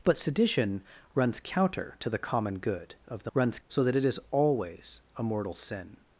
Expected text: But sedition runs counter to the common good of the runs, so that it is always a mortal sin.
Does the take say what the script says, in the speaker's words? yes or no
yes